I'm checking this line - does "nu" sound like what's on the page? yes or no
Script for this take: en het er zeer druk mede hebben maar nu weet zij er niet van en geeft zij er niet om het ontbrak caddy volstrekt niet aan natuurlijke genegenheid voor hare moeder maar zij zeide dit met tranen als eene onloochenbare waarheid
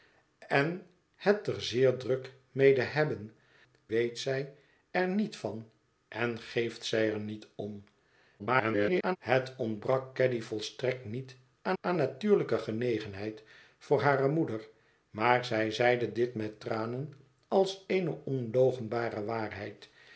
no